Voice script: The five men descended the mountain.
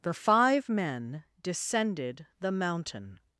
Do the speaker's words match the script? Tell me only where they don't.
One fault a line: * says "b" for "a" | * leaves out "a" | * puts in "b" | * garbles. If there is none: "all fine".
all fine